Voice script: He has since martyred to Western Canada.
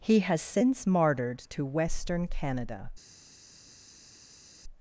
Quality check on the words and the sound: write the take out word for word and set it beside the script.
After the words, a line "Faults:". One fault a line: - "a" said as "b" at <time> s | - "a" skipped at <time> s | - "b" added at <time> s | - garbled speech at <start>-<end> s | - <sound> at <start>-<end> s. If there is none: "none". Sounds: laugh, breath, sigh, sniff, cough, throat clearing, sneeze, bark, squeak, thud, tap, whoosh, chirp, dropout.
He has since martyred to Western Canada.
Faults:
none